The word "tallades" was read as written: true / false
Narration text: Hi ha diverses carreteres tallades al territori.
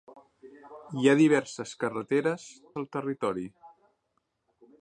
false